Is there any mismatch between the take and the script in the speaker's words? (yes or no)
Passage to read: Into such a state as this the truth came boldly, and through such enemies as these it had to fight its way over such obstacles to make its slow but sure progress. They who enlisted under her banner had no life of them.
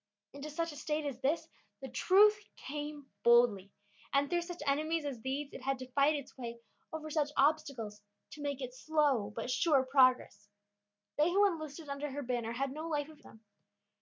no